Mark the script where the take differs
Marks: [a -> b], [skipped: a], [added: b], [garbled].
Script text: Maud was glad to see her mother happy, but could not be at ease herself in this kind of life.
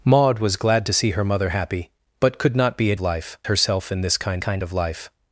Maud was glad to see her mother happy, but could not be at [ease -> life] herself in this kind [added: kind] of life.